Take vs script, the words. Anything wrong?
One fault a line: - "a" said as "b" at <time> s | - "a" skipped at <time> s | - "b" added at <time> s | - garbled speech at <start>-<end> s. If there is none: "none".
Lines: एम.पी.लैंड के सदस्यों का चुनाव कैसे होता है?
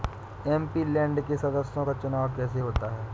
none